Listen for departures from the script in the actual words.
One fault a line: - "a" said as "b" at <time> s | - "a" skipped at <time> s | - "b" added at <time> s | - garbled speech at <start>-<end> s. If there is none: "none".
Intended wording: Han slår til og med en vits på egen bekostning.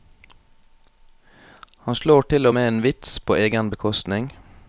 none